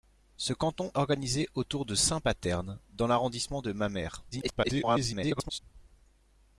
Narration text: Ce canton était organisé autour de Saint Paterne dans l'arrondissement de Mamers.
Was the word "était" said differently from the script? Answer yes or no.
yes